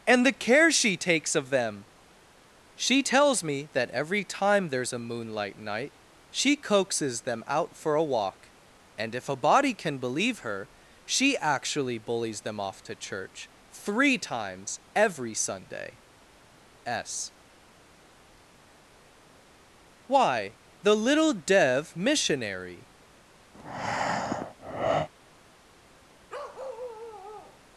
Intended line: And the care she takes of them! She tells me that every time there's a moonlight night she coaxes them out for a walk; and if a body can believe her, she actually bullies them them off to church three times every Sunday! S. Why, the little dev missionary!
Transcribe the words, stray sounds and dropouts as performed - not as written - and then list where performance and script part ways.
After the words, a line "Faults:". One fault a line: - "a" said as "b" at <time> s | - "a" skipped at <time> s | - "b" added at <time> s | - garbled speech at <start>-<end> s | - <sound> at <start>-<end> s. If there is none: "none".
And the care she takes of them! She tells me that every time there's a moonlight night she coaxes them out for a walk; and if a body can believe her, she actually bullies them off to church three times every Sunday! S. Why, the little dev missionary!
Faults:
- "them" skipped at 12.6 s
- breath at 23.5-25.1 s
- bark at 26.3-27.6 s